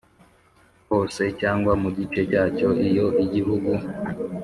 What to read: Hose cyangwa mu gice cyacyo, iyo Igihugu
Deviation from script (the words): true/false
false